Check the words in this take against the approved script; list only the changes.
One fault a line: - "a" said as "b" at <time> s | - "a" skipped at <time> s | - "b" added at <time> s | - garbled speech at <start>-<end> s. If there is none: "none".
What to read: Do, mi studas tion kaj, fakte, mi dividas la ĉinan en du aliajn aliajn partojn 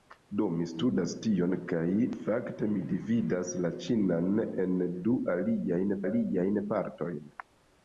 none